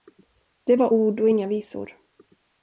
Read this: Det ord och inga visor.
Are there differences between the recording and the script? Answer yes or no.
yes